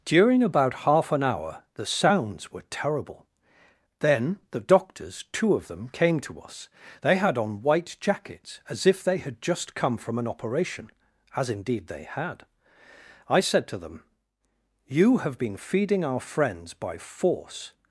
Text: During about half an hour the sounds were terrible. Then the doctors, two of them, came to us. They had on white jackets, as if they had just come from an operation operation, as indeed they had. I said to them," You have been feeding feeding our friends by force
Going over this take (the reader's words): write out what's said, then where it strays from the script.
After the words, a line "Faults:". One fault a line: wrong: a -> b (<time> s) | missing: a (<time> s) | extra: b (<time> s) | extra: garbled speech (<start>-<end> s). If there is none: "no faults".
During about half an hour the sounds were terrible. Then the doctors, two of them, came to us. They had on white jackets, as if they had just come from an operation, as indeed they had. I said to them," You have been feeding our friends by force
Faults:
missing: operation (10.9 s)
missing: feeding (16.0 s)